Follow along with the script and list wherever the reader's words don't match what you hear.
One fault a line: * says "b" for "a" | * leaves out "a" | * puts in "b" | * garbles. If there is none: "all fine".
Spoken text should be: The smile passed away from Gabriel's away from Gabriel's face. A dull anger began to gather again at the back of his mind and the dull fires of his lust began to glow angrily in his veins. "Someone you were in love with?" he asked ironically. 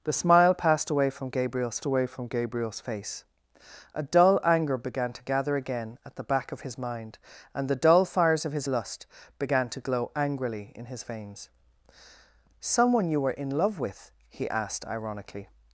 all fine